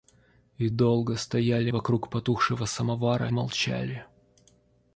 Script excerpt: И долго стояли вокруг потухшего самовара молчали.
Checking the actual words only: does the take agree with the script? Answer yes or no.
yes